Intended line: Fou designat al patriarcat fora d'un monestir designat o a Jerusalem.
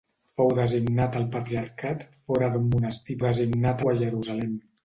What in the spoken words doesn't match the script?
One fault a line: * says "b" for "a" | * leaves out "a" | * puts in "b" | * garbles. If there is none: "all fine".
all fine